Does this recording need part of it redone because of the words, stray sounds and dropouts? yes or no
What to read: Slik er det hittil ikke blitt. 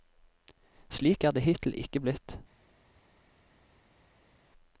no